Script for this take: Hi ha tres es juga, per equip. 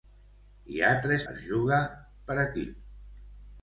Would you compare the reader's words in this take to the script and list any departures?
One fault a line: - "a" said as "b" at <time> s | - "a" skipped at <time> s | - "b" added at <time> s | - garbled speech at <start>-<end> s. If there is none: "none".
none